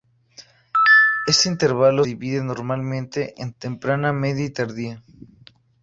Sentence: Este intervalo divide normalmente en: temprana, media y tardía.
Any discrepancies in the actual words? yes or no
no